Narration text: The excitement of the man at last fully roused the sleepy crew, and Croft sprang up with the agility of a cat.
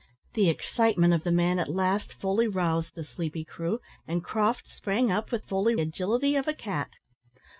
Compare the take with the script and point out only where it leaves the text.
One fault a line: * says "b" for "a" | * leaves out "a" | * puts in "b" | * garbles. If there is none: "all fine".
* says "fully" for "the"